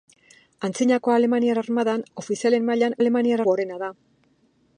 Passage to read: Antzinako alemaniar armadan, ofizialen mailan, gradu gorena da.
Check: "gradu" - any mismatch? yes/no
yes